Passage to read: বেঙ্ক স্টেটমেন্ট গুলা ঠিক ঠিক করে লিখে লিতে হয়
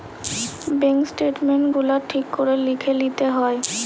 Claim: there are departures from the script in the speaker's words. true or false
true